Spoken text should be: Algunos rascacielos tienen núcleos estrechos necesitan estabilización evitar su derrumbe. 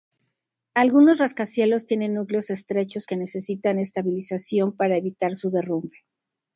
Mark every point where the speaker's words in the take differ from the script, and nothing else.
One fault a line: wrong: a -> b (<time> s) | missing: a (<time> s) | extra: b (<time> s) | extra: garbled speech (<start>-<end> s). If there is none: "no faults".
extra: que (3.0 s)
extra: para (4.8 s)